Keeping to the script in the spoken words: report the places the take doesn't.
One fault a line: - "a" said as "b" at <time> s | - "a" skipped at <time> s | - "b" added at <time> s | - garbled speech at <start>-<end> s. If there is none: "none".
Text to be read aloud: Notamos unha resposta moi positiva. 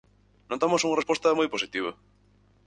none